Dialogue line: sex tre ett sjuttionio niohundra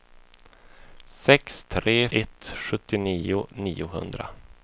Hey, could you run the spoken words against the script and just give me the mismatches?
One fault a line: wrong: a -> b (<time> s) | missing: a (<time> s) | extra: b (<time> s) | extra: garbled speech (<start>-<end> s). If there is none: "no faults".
no faults